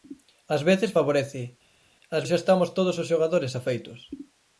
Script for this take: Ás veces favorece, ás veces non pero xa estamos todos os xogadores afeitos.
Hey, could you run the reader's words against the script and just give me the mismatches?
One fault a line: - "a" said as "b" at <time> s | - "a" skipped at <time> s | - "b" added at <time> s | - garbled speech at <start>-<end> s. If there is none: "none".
- "veces non pero" skipped at 2.2 s